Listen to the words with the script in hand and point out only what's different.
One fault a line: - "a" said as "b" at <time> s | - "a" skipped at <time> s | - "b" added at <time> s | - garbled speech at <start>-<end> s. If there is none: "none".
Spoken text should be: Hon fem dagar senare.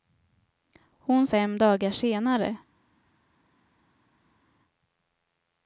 none